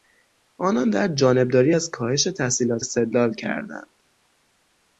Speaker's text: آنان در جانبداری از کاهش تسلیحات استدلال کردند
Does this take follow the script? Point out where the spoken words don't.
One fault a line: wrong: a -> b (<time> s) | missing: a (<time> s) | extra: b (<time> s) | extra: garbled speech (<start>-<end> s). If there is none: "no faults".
no faults